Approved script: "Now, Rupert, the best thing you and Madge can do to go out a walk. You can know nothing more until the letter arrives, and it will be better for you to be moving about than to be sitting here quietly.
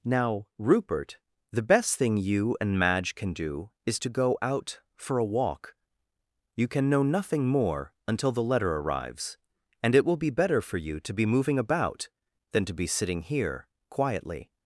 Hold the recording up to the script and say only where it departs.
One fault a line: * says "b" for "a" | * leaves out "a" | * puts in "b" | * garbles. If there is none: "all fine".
* puts in "is"
* puts in "for"